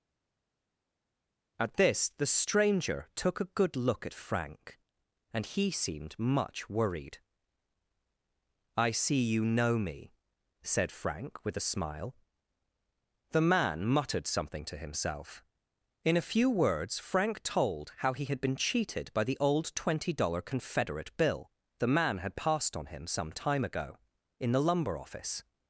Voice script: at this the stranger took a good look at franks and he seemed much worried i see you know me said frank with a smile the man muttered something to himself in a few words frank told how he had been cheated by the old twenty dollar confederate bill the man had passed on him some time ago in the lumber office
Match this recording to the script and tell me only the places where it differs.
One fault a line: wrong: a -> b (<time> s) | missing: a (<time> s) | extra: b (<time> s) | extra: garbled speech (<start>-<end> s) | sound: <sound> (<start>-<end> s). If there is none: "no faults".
wrong: franks -> frank (4.1 s)